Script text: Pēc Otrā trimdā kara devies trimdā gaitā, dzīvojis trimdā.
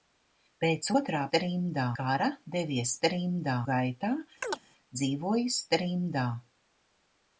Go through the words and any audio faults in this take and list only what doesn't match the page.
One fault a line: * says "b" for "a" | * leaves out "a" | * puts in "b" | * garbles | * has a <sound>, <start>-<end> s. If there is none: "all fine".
* has a chirp, 4.4-4.6 s